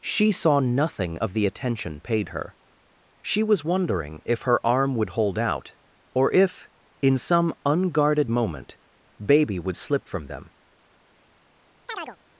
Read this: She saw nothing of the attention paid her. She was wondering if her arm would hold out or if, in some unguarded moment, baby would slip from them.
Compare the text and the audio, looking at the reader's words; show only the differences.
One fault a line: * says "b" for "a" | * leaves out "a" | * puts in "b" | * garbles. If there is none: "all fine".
all fine